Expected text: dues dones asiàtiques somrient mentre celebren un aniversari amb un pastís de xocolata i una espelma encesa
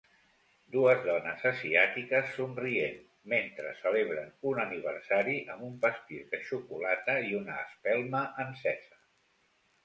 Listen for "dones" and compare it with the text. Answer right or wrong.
right